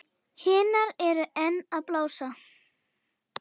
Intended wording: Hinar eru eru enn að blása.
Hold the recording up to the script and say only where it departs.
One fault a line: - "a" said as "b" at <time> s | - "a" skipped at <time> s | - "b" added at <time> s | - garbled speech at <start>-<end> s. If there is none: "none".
- "eru" skipped at 1.3 s